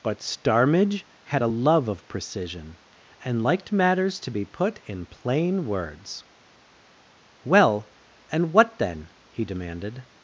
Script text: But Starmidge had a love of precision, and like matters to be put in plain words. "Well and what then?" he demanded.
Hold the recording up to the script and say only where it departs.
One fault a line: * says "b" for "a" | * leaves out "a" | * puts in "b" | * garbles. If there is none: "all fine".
* says "liked" for "like"